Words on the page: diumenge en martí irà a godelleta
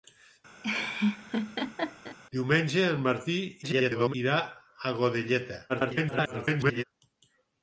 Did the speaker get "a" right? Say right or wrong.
right